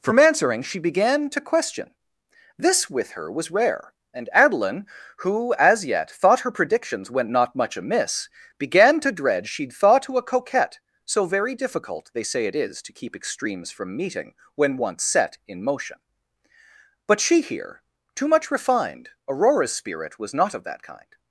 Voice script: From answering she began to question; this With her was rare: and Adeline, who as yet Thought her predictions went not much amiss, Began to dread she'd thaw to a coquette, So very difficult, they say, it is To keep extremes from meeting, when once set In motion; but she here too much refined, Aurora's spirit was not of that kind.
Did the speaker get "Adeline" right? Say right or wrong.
right